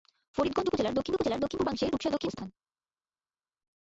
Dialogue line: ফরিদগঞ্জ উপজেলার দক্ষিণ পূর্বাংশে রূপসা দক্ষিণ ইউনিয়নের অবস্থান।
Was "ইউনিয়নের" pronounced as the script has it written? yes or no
no